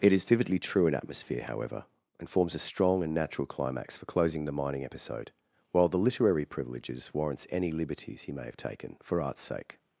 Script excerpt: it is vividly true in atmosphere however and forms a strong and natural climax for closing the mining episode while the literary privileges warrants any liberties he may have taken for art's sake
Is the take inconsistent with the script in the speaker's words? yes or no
no